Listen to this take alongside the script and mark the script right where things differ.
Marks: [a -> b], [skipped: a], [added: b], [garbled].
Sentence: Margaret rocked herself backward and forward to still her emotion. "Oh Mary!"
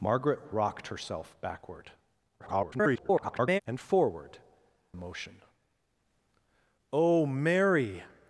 Margaret rocked herself backward [garbled] and forward [skipped: to still her] emotion. "Oh Mary!"